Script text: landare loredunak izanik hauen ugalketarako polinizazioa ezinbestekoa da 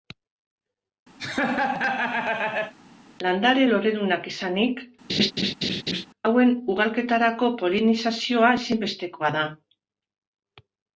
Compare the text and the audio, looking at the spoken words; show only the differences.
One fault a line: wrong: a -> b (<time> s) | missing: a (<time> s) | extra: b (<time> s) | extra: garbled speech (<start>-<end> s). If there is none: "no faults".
no faults